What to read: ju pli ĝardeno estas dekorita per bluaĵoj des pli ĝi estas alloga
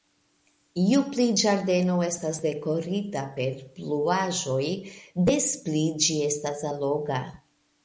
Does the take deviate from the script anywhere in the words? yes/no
no